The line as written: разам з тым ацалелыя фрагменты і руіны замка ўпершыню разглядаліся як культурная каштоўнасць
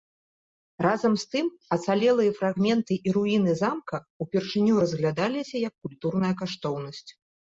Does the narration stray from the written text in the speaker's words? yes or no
no